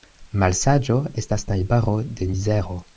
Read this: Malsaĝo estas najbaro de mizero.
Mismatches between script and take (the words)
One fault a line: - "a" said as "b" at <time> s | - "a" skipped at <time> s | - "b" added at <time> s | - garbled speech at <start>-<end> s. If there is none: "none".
none